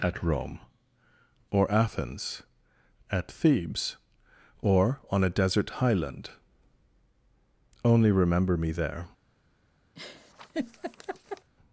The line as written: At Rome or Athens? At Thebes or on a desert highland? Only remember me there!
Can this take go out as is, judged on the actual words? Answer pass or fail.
pass